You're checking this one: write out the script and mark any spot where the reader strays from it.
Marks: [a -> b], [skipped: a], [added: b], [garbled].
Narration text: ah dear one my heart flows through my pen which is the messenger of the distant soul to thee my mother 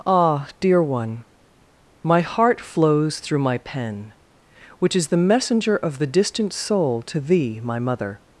ah dear one my heart flows through my pen which is the messenger of the distant soul to thee my mother